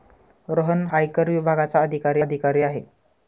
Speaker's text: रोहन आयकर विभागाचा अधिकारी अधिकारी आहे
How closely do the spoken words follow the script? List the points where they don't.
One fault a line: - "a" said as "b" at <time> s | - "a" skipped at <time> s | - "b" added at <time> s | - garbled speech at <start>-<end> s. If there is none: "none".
none